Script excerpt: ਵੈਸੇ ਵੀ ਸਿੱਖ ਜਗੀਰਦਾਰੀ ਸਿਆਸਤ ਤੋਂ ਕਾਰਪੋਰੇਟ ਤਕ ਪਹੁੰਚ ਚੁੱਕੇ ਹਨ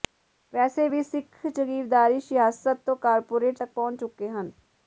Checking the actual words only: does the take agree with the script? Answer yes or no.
yes